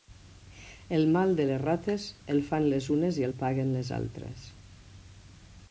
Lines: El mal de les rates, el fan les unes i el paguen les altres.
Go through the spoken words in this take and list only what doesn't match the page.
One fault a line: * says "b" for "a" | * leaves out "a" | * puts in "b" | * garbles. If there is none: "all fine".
all fine